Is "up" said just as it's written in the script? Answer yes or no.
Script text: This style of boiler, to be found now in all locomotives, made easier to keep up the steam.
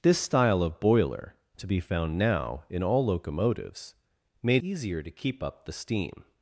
yes